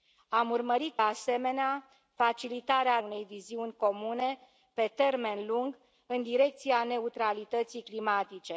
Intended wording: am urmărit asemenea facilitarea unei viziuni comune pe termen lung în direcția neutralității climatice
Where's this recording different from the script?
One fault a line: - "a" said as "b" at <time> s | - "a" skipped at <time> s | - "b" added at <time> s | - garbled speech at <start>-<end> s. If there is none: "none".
none